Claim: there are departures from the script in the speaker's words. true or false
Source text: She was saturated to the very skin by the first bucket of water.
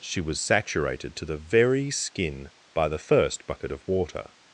false